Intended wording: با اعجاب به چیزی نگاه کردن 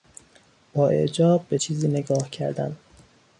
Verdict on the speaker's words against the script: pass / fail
pass